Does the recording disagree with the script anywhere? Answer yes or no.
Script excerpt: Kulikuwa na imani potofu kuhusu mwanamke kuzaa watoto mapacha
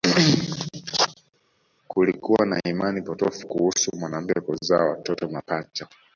no